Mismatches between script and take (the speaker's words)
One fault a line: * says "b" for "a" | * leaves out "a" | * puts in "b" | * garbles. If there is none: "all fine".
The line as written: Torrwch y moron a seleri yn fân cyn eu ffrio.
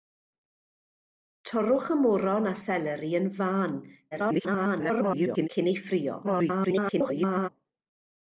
* garbles
* garbles